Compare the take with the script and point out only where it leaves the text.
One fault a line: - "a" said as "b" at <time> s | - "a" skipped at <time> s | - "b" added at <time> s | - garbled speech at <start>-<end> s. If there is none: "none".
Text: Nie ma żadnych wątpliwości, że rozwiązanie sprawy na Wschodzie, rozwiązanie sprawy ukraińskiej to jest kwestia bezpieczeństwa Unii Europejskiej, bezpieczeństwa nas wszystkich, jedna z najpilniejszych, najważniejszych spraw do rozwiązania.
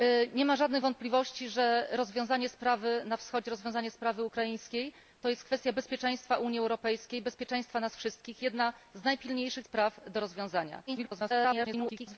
- "najważniejszych" skipped at 9.7 s
- garbled speech at 10.9-12.2 s